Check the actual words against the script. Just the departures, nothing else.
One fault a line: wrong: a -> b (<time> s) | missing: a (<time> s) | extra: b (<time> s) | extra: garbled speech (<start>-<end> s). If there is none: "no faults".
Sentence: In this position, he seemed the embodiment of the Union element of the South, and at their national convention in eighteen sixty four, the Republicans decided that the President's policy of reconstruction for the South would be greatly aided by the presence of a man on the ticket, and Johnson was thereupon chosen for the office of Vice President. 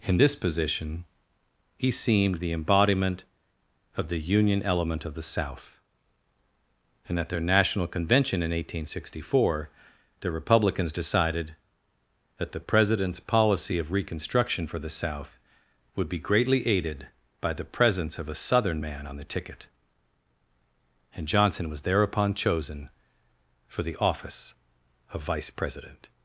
extra: southern (18.3 s)